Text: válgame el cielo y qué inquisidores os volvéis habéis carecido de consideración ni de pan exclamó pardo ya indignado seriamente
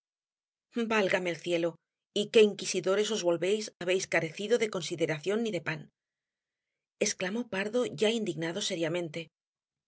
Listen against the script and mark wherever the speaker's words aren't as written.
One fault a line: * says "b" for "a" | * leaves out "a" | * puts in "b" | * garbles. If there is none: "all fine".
all fine